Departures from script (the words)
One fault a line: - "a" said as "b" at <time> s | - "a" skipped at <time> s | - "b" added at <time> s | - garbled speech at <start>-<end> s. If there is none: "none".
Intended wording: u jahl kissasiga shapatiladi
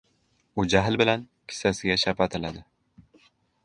- "bilan" added at 1.0 s